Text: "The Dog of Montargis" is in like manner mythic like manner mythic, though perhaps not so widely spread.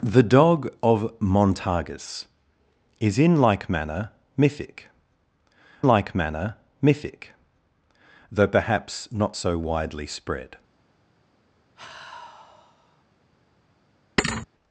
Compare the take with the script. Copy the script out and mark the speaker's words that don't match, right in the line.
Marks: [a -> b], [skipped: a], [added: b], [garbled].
"The Dog of Montargis" is in like manner mythic like manner mythic, though perhaps not so widely spread.